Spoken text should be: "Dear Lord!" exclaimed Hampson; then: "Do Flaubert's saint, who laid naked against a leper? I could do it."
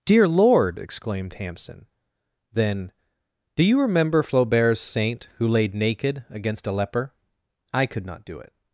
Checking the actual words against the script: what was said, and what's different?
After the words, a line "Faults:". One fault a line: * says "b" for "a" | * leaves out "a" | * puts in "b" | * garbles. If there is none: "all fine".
"Dear Lord!" exclaimed Hampson; then: "Do you remember Flaubert's saint, who laid naked against a leper? I could not do it."
Faults:
* puts in "you remember"
* puts in "not"